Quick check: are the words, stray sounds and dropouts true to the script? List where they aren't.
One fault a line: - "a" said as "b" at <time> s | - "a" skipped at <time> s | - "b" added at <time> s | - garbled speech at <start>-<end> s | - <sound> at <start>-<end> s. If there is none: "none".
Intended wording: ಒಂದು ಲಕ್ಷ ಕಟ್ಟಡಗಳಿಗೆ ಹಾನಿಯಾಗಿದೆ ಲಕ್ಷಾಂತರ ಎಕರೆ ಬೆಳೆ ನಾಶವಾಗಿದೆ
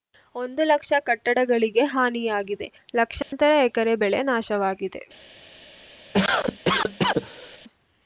- dropout at 3.2-3.3 s
- cough at 6.1-7.6 s